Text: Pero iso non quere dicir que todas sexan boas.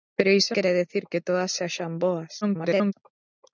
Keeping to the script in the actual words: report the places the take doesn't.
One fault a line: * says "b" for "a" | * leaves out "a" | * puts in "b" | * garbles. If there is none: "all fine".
* leaves out "non"
* garbles